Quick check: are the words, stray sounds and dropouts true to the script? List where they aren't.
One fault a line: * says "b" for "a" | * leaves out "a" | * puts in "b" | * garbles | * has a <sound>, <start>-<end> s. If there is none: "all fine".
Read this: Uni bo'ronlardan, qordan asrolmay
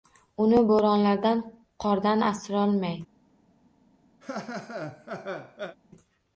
* has a laugh, 4.2-5.8 s